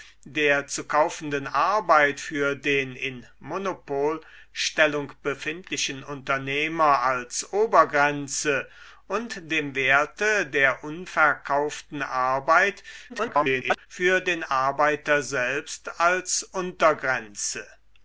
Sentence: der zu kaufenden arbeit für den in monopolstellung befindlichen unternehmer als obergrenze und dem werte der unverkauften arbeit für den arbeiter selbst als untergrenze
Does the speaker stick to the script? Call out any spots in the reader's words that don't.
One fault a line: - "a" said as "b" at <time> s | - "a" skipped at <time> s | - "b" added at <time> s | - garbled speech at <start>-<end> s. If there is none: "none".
- garbled speech at 13.1-13.9 s